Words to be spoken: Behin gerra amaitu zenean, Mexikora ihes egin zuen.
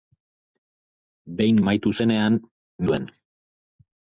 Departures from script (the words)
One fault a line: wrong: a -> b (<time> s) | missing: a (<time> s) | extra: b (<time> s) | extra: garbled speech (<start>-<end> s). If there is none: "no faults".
missing: gerra (1.6 s)
missing: Mexikora ihes egin (2.4 s)